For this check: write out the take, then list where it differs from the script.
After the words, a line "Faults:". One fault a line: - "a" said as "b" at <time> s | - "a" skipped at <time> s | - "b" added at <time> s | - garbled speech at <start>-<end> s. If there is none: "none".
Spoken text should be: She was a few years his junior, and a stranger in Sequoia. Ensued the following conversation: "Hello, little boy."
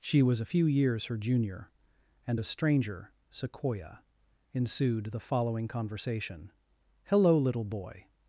She was a few years her junior, and a stranger Sequoia. Ensued the following conversation: "Hello, little boy."
Faults:
- "his" said as "her" at 1.1 s
- "in" skipped at 3.1 s